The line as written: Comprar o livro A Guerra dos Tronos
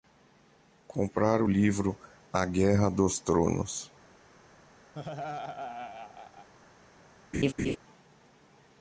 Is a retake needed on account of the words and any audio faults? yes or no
yes